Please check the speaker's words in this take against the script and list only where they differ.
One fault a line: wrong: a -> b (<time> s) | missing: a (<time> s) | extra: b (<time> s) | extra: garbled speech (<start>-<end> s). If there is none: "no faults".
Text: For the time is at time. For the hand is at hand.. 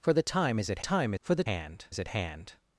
no faults